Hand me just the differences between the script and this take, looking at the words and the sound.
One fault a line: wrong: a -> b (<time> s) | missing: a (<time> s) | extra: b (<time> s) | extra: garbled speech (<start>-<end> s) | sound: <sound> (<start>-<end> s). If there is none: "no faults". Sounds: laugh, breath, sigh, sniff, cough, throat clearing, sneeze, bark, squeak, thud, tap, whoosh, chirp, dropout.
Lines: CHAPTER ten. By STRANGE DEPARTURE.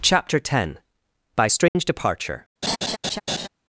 sound: dropout (1.7-1.8 s)
sound: laugh (2.6-3.5 s)